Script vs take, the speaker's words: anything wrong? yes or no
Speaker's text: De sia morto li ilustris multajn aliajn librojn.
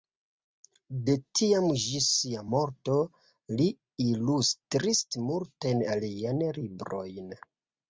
yes